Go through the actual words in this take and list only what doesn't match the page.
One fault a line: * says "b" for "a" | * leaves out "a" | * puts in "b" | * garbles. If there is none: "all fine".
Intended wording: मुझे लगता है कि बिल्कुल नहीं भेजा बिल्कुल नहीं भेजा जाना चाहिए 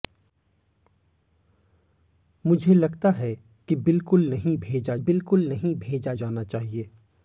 all fine